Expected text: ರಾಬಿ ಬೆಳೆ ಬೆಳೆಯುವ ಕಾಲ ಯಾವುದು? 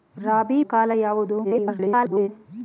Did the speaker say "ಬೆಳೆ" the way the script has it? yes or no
no